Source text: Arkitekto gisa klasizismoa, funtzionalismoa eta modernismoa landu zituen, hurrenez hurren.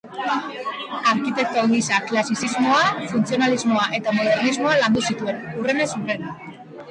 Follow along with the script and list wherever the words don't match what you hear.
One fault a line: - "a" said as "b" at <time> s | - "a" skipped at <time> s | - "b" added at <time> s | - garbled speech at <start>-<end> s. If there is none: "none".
none